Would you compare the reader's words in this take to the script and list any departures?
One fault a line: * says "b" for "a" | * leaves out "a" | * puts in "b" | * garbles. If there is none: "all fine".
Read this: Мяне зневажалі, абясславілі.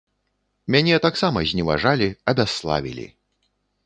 * puts in "таксама"